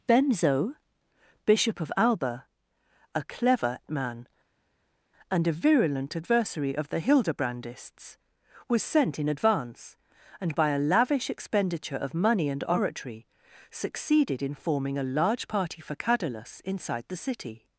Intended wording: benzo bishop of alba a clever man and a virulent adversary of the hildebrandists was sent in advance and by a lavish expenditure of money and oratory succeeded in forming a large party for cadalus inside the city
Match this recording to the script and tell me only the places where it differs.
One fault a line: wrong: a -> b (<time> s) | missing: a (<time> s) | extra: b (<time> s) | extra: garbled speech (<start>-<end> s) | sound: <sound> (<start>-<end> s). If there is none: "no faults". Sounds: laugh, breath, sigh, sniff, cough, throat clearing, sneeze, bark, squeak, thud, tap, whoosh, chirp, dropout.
no faults